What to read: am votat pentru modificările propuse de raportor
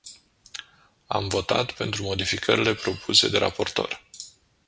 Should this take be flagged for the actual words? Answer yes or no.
no